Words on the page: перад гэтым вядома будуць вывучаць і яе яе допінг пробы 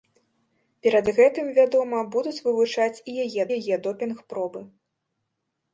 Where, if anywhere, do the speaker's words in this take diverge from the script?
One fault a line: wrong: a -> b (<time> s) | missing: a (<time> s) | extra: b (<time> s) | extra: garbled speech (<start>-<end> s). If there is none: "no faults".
no faults